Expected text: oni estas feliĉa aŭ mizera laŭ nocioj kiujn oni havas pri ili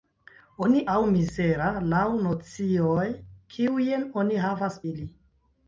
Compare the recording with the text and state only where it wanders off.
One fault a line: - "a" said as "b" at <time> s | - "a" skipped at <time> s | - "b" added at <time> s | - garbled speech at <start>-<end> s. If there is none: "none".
- "estas feliĉa" skipped at 0.8 s
- "pri" skipped at 4.8 s